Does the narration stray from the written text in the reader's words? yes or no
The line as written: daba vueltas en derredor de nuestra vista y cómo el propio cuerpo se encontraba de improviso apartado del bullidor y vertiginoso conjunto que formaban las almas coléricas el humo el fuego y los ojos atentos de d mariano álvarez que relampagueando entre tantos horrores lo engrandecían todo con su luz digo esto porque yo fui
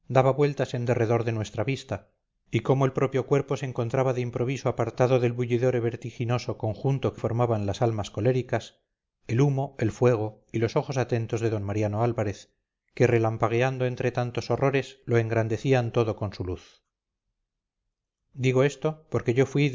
no